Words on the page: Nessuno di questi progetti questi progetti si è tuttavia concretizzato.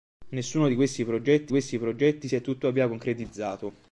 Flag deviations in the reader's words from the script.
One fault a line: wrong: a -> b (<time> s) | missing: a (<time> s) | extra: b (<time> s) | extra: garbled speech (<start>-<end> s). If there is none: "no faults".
no faults